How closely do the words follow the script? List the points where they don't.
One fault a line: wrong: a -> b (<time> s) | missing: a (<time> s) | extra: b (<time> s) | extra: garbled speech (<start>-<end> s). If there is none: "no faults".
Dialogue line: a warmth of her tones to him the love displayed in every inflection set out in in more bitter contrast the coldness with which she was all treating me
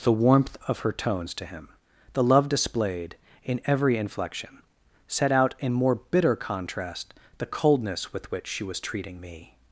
wrong: a -> the (0.0 s)
missing: in (5.7 s)
missing: all (8.8 s)